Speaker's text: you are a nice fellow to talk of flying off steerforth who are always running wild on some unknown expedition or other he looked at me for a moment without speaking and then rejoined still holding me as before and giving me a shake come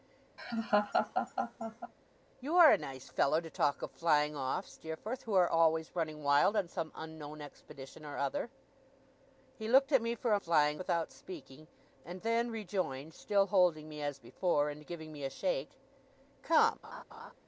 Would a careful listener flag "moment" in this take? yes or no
yes